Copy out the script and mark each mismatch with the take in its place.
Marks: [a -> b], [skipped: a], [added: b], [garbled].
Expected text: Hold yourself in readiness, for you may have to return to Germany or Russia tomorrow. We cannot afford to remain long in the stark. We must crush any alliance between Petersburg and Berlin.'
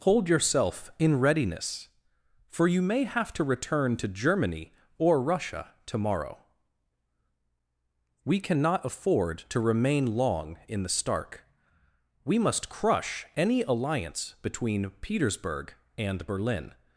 Hold yourself in readiness, for you may have to return to Germany or Russia tomorrow. We cannot afford to remain long in the stark. We must crush any alliance between Petersburg and Berlin.'